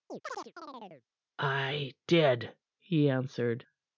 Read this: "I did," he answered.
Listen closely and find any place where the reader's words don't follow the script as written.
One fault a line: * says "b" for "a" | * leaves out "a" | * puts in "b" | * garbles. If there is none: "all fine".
all fine